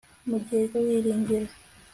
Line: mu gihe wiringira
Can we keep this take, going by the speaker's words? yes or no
yes